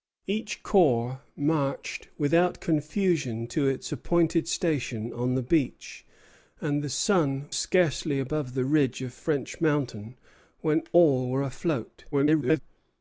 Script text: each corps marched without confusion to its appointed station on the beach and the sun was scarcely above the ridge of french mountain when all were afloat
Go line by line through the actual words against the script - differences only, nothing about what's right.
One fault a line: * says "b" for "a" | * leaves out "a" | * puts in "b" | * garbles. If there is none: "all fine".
* leaves out "was"
* garbles